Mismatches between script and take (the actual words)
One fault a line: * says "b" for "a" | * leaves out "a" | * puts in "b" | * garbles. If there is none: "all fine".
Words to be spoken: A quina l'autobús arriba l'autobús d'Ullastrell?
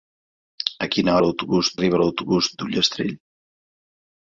all fine